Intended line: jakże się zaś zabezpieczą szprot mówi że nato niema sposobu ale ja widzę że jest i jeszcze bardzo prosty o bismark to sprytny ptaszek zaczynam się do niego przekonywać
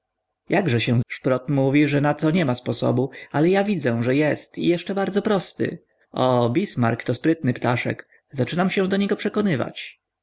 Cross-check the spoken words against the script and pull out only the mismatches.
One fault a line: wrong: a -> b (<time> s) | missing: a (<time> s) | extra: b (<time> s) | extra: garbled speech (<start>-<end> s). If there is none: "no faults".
missing: zaś zabezpieczą (1.0 s)